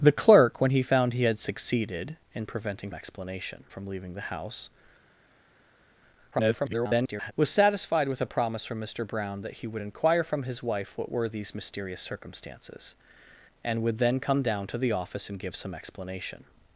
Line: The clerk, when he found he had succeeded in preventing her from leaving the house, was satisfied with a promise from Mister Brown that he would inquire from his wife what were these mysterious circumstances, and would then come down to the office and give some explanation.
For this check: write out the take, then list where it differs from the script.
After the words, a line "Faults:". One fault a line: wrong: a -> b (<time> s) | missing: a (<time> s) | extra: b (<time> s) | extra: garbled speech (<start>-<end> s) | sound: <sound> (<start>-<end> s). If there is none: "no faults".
The clerk, when he found he had succeeded in preventing explanation from leaving the house, [garbled] was satisfied with a promise from Mister Brown that he would inquire from his wife what were these mysterious circumstances, and would then come down to the office and give some explanation.
Faults:
wrong: her -> explanation (2.9 s)
extra: garbled speech (6.3-7.3 s)